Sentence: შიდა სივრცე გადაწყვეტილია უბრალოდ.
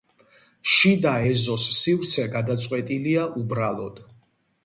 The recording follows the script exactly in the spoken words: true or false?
false